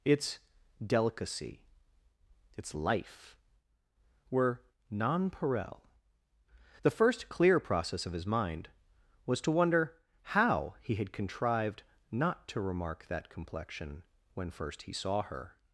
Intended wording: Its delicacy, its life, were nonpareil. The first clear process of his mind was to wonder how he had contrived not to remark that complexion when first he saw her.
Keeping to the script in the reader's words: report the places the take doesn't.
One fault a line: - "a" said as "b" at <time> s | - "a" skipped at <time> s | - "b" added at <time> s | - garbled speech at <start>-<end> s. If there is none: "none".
none